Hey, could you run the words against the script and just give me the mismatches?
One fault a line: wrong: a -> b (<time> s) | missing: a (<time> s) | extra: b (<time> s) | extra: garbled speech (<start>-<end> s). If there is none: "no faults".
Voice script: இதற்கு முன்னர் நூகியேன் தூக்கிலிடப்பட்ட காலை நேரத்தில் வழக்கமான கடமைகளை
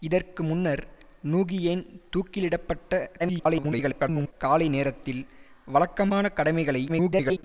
extra: garbled speech (3.2-4.3 s)
extra: garbled speech (6.9-7.4 s)